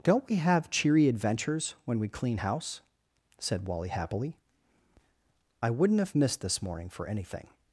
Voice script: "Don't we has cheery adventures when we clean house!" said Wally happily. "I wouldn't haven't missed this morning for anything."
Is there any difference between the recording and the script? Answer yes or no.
yes